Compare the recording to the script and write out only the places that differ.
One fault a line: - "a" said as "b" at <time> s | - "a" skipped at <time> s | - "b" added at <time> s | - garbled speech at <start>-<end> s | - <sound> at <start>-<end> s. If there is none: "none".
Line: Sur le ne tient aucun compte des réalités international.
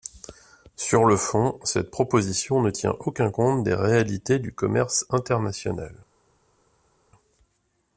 - "fond cette proposition" added at 1.1 s
- "du commerce" added at 4.4 s